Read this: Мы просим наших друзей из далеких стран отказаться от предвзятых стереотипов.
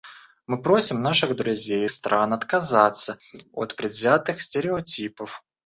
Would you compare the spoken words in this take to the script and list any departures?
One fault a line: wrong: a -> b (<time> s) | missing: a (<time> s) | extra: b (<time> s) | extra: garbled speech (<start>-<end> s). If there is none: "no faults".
missing: из далеких (1.9 s)